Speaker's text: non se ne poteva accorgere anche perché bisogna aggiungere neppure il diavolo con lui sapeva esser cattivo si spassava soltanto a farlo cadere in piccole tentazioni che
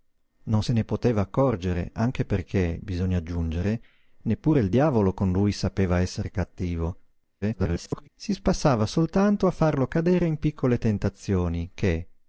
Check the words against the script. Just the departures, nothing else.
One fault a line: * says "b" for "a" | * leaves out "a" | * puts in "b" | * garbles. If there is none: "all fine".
* garbles